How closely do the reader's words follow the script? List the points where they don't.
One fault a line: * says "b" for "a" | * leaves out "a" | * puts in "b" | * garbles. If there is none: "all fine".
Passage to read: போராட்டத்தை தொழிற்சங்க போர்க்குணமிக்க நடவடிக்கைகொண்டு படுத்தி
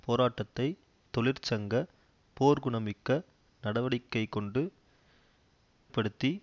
all fine